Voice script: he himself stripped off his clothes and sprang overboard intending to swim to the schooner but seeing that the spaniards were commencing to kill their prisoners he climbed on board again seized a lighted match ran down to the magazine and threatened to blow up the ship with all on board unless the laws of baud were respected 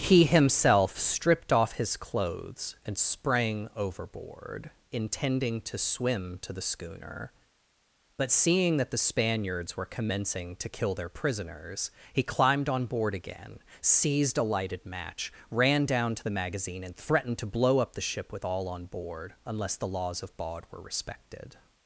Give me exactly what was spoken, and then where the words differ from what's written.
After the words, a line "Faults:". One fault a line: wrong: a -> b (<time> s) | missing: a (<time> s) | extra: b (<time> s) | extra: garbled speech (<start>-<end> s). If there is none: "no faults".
he himself stripped off his clothes and sprang overboard intending to swim to the schooner but seeing that the spaniards were commencing to kill their prisoners he climbed on board again seized a lighted match ran down to the magazine and threatened to blow up the ship with all on board unless the laws of baud were respected
Faults:
no faults